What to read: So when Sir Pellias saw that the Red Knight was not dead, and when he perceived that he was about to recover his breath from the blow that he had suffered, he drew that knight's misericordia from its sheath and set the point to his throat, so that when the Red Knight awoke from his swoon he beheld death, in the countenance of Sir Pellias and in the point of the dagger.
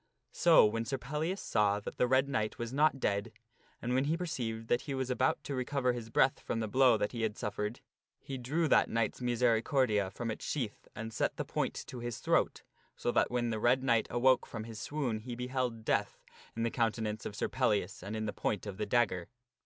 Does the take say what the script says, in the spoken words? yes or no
yes